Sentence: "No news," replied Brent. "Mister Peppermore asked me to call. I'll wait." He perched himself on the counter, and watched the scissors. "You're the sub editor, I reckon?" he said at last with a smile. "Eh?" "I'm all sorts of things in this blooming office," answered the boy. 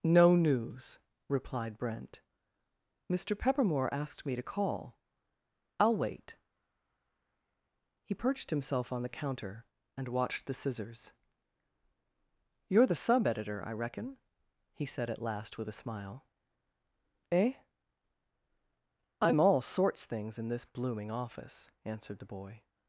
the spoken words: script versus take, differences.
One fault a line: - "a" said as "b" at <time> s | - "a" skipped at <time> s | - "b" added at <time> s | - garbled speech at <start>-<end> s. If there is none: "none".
- "of" skipped at 20.1 s